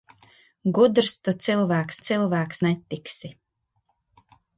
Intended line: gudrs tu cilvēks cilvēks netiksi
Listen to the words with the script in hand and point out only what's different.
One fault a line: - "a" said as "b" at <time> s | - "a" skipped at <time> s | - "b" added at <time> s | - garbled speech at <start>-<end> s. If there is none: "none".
none